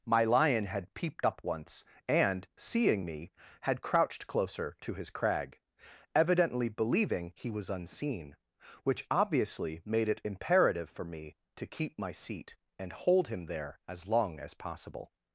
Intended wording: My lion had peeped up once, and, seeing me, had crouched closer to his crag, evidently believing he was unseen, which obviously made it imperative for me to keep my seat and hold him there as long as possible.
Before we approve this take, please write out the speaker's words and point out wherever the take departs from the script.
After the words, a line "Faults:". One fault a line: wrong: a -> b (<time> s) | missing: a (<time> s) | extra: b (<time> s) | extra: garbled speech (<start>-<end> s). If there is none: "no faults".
My lion had peeped up once, and, seeing me, had crouched closer to his crag, evidently believing he was unseen, which obviously made it imperative for me to keep my seat and hold him there as long as possible.
Faults:
no faults